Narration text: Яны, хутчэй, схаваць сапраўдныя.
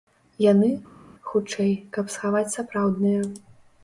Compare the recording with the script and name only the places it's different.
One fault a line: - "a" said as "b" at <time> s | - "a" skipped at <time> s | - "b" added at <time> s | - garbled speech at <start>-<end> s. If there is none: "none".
- "каб" added at 2.0 s